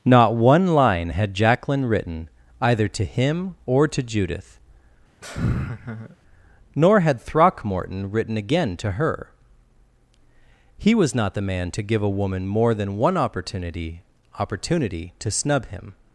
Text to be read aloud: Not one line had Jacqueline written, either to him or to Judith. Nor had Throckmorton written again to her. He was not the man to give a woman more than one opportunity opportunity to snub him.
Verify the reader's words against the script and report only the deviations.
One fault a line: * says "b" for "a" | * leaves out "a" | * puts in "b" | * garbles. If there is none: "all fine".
all fine